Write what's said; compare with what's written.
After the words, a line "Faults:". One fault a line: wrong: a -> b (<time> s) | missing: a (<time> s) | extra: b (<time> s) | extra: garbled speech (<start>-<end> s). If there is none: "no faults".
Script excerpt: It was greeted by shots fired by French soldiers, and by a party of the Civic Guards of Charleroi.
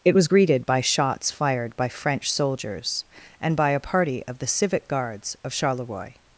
It was greeted by shots fired by French soldiers, and by a party of the Civic Guards of Charleroi.
Faults:
no faults